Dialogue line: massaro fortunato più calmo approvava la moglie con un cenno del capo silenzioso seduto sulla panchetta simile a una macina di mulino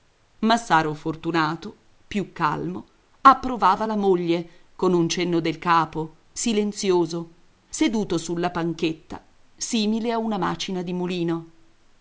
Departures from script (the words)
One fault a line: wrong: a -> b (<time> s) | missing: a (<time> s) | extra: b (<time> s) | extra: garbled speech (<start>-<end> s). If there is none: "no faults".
no faults